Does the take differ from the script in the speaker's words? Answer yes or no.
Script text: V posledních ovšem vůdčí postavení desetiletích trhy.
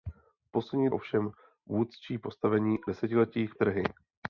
no